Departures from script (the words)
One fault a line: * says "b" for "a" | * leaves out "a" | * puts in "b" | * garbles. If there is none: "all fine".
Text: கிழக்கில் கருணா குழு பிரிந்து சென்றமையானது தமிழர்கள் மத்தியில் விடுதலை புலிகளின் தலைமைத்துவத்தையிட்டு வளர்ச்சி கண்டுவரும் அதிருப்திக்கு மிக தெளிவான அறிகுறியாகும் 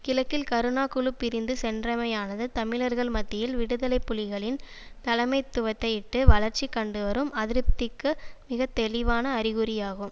all fine